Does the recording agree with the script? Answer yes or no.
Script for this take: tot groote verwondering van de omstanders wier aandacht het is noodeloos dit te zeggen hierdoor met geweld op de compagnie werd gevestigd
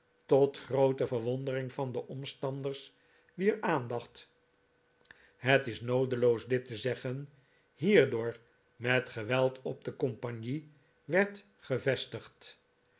yes